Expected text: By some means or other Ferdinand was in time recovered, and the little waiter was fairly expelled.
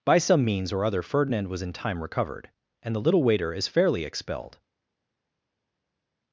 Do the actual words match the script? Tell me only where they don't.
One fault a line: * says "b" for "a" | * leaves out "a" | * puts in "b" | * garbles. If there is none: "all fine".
* says "is" for "was"